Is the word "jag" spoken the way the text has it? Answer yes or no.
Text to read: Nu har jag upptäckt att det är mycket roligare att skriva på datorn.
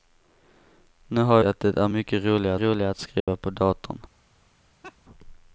no